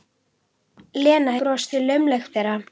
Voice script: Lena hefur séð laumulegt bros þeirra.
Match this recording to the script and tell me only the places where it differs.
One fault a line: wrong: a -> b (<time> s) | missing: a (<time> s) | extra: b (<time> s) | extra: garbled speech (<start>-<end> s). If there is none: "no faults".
wrong: hefur -> bros (1.4 s)
missing: bros (2.4 s)